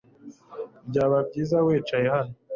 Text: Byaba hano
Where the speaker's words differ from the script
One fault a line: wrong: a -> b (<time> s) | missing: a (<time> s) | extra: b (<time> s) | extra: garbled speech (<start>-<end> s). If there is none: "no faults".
extra: byiza wicaye (1.3 s)